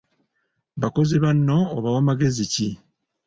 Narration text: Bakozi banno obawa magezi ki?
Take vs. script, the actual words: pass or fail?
pass